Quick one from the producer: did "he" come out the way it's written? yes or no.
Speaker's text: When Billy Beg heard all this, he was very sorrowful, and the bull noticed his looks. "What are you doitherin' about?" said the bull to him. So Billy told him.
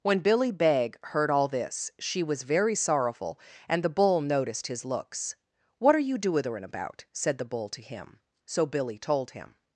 no